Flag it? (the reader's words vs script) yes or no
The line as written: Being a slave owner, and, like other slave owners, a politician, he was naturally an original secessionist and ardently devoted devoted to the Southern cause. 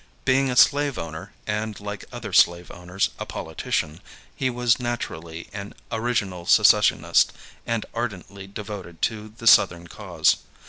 yes